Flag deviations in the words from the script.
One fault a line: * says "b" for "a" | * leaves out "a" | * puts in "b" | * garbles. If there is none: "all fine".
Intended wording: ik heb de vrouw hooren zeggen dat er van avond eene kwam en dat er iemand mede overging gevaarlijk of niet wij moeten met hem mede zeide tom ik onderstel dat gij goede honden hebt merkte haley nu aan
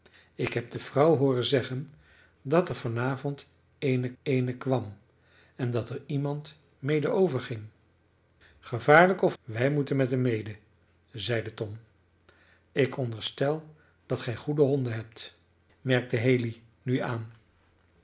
* puts in "eene"
* leaves out "niet"